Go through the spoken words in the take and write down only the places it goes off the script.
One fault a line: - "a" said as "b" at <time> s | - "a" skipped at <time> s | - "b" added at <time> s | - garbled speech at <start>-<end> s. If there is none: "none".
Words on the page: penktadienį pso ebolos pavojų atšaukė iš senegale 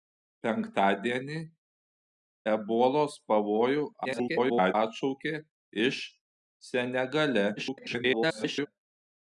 - "pso" skipped at 1.4 s
- garbled speech at 4.0-4.7 s
- garbled speech at 7.6-8.7 s